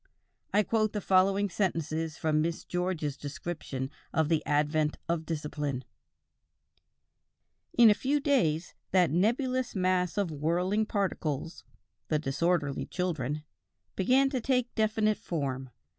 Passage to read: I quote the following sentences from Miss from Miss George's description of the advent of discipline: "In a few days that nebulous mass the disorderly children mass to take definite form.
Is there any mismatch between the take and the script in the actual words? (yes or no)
yes